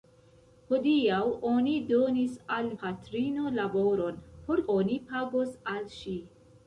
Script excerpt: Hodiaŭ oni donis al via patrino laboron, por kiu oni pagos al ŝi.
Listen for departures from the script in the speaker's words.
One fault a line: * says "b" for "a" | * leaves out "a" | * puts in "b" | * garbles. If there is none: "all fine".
* leaves out "via"
* leaves out "kiu"